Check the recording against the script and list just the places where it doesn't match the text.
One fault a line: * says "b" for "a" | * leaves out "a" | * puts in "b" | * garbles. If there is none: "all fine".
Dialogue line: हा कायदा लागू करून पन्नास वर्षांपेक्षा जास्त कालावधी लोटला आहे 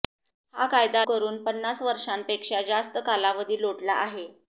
* leaves out "लागू"